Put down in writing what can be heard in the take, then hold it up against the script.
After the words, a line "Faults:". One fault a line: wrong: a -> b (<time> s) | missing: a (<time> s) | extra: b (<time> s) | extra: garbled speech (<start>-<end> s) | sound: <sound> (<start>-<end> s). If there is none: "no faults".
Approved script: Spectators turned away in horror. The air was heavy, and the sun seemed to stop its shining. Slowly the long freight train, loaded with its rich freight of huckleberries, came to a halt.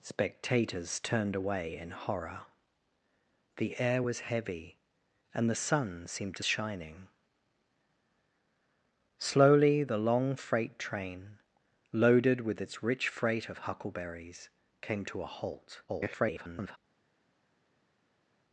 Spectators turned away in horror. The air was heavy, and the sun seemed to shining. Slowly the long freight train, loaded with its rich freight of huckleberries, came to a halt. [garbled]
Faults:
missing: stop its (6.4 s)
extra: garbled speech (15.9-16.8 s)